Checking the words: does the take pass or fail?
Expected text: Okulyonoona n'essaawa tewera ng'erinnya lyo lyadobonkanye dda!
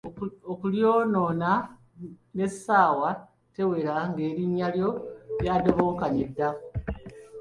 pass